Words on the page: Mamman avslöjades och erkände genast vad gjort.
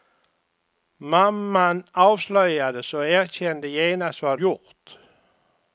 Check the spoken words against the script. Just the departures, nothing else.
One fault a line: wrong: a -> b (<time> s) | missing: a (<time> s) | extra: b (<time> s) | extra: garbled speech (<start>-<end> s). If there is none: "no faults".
no faults